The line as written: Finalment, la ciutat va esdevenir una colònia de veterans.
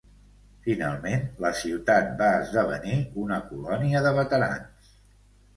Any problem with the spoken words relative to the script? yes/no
no